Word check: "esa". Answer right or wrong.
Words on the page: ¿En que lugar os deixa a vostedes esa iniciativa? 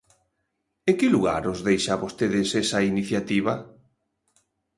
right